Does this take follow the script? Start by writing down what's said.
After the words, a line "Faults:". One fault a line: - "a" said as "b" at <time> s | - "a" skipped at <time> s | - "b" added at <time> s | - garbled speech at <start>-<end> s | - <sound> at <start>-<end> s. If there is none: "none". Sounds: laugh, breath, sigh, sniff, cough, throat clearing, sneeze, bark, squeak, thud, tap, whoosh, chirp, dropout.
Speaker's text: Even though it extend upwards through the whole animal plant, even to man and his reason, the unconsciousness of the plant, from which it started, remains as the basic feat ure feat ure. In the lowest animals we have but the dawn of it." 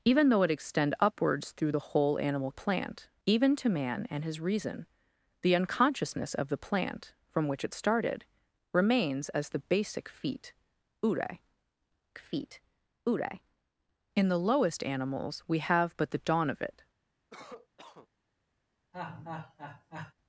Even though it extend upwards through the whole animal plant, even to man and his reason, the unconsciousness of the plant, from which it started, remains as the basic feat ure feat ure. In the lowest animals we have but the dawn of it."
Faults:
- cough at 17.3-18.1 s
- laugh at 18.9-20.1 s